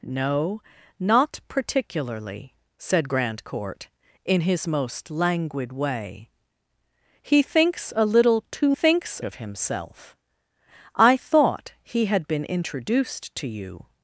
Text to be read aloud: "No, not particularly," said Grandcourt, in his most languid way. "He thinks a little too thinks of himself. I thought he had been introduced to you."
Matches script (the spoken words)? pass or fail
pass